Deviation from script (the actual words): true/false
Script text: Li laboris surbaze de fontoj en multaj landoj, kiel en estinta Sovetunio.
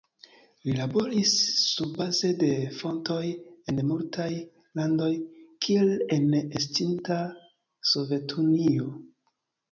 false